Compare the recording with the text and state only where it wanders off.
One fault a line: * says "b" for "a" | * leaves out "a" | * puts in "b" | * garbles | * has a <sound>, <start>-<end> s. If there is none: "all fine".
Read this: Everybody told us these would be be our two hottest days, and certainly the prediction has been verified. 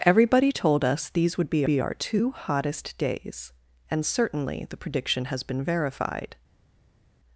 all fine